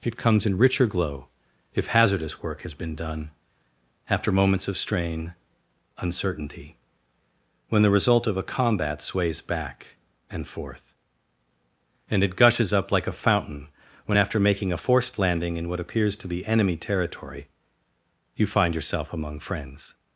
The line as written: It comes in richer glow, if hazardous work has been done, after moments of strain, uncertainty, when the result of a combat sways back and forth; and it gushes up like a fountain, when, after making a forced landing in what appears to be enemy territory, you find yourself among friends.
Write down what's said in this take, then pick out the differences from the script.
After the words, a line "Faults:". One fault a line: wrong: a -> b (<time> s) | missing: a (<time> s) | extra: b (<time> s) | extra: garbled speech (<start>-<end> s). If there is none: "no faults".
It comes in richer glow, if hazardous work has been done, after moments of strain, uncertainty, when the result of a combat sways back and forth; and it gushes up like a fountain, when, after making a forced landing in what appears to be enemy territory, you find yourself among friends.
Faults:
no faults